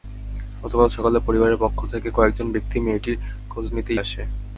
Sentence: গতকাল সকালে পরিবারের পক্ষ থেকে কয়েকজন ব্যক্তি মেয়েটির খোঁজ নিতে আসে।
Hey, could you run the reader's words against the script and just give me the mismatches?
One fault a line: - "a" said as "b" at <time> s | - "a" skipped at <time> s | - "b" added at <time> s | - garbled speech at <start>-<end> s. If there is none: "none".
none